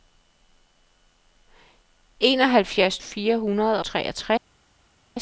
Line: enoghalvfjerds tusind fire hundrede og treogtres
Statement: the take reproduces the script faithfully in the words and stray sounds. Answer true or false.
false